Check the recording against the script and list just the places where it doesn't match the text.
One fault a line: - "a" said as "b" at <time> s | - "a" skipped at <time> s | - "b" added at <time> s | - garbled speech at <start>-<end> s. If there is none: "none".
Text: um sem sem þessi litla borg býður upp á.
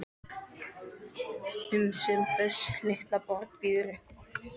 - "sem" skipped at 2.2 s